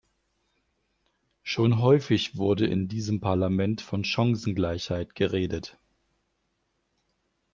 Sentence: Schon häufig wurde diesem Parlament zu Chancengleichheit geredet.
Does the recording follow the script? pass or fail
fail